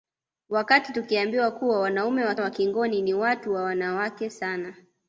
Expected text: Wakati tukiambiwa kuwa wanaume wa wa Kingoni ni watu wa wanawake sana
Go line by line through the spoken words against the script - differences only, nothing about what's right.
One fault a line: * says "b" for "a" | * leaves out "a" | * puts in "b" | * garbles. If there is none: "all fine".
all fine